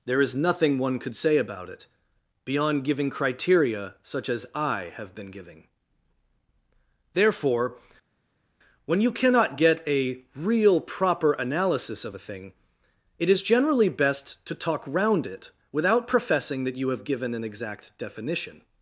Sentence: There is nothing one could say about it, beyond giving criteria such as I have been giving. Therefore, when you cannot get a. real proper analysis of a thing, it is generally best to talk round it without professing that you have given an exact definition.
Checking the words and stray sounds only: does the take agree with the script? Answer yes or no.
yes